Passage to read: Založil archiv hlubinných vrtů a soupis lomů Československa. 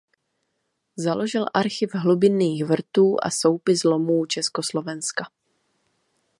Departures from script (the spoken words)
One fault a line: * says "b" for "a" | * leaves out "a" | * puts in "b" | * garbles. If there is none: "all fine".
all fine